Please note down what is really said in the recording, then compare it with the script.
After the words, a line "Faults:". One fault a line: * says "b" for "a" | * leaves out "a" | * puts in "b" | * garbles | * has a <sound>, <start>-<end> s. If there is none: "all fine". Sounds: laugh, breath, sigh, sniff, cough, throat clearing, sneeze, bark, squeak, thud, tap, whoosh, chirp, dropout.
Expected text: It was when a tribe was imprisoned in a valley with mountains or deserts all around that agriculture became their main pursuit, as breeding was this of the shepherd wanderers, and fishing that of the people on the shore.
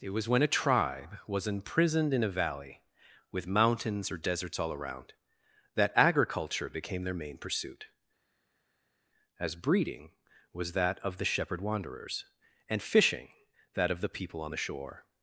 It was when a tribe was imprisoned in a valley with mountains or deserts all around that agriculture became their main pursuit, as breeding was that of the shepherd wanderers, and fishing that of the people on the shore.
Faults:
* says "that" for "this"